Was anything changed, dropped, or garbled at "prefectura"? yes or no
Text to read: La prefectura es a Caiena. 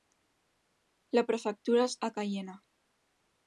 no